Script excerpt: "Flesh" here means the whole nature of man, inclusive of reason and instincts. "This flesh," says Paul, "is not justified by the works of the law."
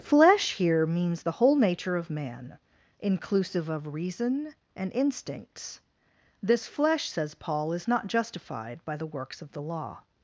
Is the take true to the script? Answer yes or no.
yes